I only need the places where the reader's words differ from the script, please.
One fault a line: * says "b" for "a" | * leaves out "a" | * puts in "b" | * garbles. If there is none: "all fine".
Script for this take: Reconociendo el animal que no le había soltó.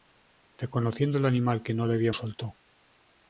all fine